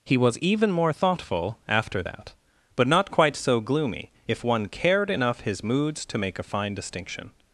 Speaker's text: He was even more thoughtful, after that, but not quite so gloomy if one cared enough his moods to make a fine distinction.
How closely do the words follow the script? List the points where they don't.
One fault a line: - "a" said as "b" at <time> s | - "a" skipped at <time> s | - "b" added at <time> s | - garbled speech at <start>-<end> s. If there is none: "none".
none